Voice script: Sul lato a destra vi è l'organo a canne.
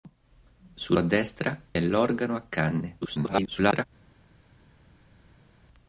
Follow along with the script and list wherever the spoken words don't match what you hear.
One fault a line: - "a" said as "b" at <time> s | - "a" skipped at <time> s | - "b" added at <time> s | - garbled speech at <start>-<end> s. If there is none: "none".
- "lato" skipped at 1.0 s
- "vi" skipped at 1.5 s
- garbled speech at 3.0-3.8 s